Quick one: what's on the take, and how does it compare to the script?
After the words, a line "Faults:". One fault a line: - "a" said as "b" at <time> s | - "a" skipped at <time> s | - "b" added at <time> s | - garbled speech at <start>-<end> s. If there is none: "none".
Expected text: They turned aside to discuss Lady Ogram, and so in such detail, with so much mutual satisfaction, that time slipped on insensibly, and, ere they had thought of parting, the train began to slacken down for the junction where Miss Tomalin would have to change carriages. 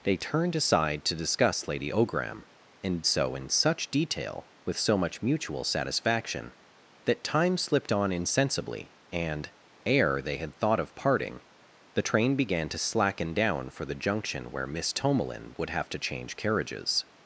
They turned aside to discuss Lady Ogram, and so in such detail, with so much mutual satisfaction, that time slipped on insensibly, and, ere they had thought of parting, the train began to slacken down for the junction where Miss Tomalin would have to change carriages.
Faults:
none